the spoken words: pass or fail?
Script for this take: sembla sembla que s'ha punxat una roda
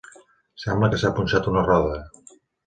fail